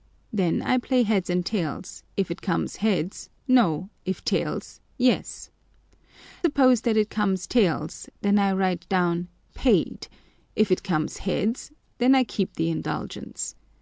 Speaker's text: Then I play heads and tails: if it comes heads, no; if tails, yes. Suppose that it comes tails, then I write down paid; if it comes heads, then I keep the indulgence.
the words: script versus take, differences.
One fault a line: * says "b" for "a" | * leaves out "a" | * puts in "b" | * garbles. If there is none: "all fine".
all fine